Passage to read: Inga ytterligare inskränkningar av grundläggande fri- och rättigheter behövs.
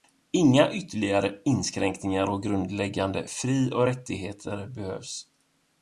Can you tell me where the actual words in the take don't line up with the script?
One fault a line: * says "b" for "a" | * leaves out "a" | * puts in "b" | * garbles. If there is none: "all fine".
all fine